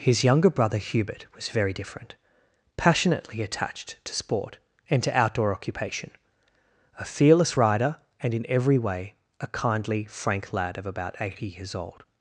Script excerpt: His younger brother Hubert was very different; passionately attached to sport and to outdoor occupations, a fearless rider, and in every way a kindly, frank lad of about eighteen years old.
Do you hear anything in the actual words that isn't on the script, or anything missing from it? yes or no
yes